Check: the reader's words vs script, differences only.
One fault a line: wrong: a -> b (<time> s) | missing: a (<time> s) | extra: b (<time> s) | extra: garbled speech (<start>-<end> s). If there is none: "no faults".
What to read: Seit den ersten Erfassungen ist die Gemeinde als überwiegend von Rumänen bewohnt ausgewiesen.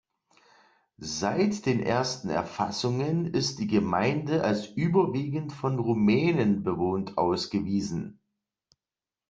no faults